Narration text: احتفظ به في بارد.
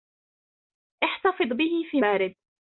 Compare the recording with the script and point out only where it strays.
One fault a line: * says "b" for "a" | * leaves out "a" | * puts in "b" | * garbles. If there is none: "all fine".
all fine